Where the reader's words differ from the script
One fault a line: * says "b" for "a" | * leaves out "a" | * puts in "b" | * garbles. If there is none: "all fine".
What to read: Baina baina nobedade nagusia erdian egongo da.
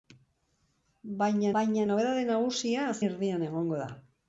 all fine